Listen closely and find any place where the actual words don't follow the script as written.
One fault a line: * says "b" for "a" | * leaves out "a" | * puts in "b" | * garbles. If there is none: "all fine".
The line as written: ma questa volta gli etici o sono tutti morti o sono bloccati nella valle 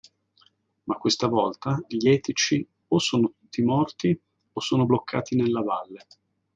all fine